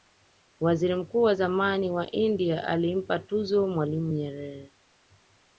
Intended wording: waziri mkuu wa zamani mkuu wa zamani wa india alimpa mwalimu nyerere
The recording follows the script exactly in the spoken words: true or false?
false